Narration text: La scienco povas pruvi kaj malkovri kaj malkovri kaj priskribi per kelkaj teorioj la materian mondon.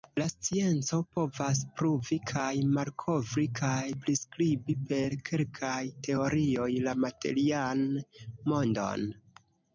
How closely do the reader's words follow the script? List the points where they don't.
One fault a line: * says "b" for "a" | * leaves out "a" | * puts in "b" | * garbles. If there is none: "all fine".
* leaves out "malkovri kaj"